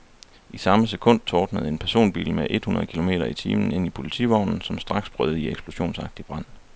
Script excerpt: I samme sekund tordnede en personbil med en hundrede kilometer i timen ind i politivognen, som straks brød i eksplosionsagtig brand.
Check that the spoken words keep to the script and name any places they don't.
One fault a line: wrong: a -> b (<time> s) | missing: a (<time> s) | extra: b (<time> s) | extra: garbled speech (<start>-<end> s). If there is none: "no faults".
wrong: en -> et (2.5 s)